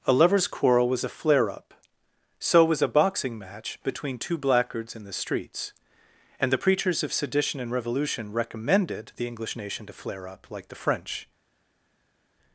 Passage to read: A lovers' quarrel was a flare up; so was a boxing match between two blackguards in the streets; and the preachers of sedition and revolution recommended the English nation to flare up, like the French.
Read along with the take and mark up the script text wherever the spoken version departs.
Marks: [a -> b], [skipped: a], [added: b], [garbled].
A lovers' quarrel was a flare up; so was a boxing match between two blackguards in the streets; and the preachers of sedition and revolution recommended the English nation to flare up, like the French.